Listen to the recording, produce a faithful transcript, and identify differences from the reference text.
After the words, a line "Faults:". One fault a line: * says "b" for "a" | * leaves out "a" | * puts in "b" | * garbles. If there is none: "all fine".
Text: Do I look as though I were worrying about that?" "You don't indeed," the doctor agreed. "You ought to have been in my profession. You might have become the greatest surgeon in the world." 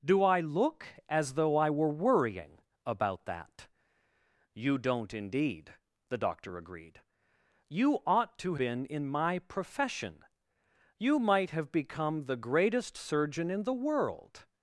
Do I look as though I were worrying about that?" "You don't indeed," the doctor agreed. "You ought to been in my profession. You might have become the greatest surgeon in the world."
Faults:
* leaves out "have"